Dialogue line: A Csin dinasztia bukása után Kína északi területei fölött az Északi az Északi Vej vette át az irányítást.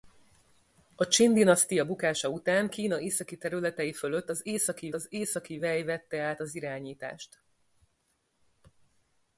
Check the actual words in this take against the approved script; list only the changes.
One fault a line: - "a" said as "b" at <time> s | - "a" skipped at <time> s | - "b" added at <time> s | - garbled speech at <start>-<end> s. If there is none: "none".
none